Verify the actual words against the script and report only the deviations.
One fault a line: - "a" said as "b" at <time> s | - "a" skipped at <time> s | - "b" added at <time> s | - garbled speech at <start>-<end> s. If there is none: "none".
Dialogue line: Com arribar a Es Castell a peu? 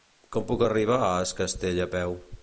- "puc" added at 0.5 s